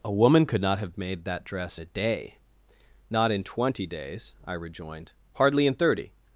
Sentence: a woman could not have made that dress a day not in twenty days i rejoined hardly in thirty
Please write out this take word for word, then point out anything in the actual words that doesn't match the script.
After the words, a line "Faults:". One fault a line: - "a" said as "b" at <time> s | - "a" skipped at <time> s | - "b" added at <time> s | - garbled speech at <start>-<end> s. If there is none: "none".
a woman could not have made that dress a day not in twenty days i rejoined hardly in thirty
Faults:
none